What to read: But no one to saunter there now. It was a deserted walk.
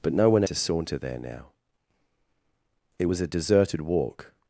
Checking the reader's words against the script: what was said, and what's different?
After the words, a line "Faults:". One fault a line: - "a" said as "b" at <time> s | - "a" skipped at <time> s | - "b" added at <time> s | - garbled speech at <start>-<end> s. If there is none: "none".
But no one to saunter there now. It was a deserted walk.
Faults:
none